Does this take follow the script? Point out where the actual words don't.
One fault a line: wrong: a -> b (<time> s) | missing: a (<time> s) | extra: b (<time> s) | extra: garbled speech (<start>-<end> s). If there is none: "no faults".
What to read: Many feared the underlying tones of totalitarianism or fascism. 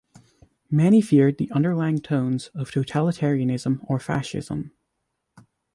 no faults